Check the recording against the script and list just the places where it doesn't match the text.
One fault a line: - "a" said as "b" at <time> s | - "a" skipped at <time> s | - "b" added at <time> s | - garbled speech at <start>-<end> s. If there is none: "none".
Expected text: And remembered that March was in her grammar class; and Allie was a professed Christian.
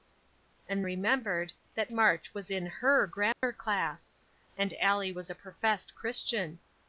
none